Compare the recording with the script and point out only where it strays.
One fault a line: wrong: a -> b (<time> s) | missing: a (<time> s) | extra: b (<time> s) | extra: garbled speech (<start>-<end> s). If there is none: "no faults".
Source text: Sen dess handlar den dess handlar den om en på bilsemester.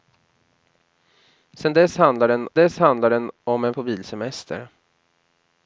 no faults